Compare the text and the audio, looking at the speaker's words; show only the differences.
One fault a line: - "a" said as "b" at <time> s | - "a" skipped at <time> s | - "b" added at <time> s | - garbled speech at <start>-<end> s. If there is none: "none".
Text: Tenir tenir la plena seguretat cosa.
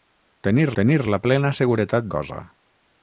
none